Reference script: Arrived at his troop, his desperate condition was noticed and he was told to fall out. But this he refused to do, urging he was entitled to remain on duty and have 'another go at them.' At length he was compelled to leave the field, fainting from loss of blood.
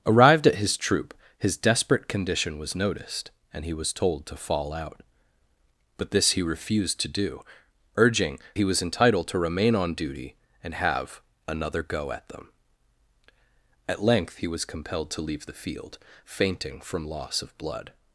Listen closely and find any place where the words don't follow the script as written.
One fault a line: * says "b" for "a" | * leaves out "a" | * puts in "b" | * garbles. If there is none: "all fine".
all fine